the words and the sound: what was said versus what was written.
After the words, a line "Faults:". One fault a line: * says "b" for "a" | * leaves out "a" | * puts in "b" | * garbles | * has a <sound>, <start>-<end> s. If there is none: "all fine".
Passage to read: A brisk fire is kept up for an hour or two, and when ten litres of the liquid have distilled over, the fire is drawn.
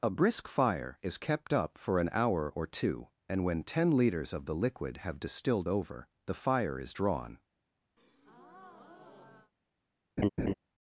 A brisk fire is kept up for an hour or two, and when ten litres of the liquid have distilled over, the fire is drawn.
Faults:
* has a breath, 8.0-9.5 s
* has a laugh, 10.2-10.5 s